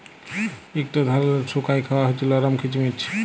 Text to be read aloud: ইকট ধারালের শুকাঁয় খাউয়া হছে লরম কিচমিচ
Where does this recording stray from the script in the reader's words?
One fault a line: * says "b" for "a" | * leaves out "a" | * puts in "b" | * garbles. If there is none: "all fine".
all fine